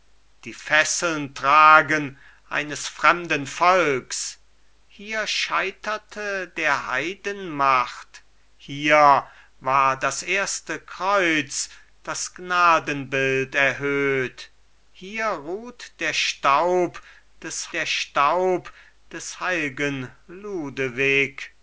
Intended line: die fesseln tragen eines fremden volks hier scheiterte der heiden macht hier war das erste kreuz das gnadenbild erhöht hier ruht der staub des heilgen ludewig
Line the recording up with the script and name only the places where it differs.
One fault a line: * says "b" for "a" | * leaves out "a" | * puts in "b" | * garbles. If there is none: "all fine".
* puts in "der staub des"